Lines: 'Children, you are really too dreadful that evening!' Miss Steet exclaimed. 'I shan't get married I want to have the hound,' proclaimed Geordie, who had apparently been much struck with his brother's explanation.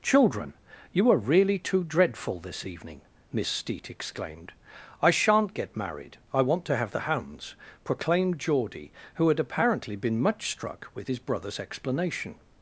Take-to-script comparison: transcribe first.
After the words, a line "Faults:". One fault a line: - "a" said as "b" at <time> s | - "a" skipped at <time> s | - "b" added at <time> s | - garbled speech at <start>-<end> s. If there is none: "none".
'Children, you are really too dreadful this evening!' Miss Steet exclaimed. 'I shan't get married I want to have the hounds,' proclaimed Geordie, who had apparently been much struck with his brother's explanation.
Faults:
- "that" said as "this" at 2.4 s
- "hound" said as "hounds" at 7.0 s